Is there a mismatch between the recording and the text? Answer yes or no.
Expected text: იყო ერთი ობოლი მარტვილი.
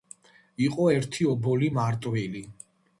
no